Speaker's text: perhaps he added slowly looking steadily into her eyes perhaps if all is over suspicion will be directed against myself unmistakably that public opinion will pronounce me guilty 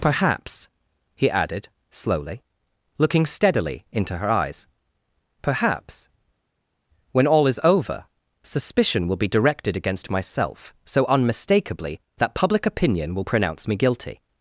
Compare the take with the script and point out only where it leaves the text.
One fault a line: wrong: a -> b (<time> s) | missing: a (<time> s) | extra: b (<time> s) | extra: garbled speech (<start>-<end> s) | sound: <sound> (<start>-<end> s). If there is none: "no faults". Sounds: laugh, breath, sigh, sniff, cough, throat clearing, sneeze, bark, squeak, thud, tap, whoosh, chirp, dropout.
wrong: if -> when (7.1 s)
extra: so (10.8 s)